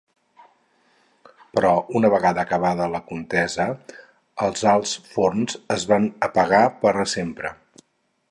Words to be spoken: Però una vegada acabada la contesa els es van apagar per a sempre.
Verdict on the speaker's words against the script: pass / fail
fail